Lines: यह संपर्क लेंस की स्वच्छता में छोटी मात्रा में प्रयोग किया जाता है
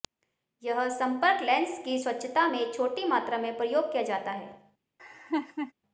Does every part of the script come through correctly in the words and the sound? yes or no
no